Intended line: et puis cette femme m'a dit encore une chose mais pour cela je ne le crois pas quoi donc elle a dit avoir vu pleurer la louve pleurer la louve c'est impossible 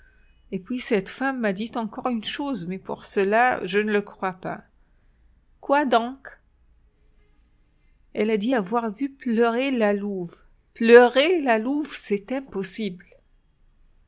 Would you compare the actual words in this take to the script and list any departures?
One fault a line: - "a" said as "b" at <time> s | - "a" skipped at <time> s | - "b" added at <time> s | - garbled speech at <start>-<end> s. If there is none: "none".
none